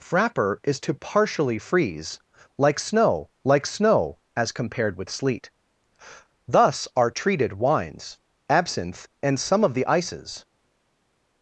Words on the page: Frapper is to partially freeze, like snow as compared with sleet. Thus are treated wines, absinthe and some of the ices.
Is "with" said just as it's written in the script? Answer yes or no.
yes